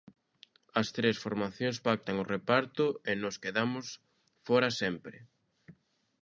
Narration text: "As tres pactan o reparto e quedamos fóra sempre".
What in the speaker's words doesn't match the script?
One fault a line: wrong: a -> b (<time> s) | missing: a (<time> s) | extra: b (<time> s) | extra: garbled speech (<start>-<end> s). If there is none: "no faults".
extra: formacións (1.2 s)
extra: nós (3.2 s)